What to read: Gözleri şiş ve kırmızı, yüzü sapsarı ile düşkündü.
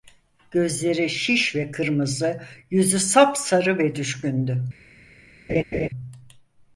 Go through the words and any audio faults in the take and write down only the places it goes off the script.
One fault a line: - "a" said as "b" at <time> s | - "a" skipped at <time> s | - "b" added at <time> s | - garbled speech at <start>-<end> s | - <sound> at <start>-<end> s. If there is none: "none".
- "ile" said as "ve" at 3.8 s
- laugh at 5.5-5.9 s